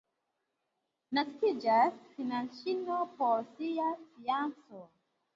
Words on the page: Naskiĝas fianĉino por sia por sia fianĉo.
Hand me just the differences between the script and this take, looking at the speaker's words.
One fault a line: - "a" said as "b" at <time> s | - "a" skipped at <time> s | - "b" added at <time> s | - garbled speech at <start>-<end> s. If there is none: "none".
- "por sia" skipped at 3.9 s